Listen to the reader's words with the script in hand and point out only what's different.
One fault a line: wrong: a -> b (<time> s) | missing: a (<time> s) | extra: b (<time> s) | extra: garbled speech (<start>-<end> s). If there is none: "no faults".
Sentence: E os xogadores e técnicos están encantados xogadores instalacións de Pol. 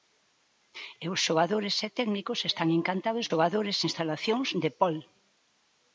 no faults